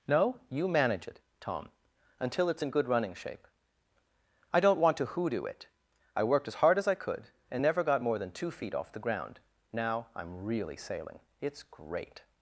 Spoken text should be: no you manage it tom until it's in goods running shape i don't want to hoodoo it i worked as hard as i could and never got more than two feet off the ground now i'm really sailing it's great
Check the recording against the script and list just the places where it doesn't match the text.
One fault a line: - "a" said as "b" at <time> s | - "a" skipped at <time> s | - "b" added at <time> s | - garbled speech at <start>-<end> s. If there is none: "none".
- "goods" said as "good" at 2.7 s